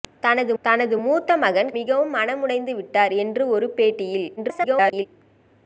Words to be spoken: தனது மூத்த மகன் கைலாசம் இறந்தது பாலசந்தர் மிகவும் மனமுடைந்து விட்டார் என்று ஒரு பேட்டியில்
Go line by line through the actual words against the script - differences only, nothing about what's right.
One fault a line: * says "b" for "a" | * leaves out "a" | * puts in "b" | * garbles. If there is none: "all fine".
* puts in "தனது"
* leaves out "கைலாசம் இறந்தது பாலசந்தர்"
* garbles